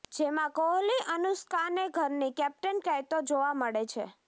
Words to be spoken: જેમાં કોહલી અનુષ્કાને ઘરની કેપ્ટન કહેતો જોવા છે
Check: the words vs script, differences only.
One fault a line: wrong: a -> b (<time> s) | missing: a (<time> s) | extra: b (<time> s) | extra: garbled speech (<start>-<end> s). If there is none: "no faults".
extra: મળે (3.5 s)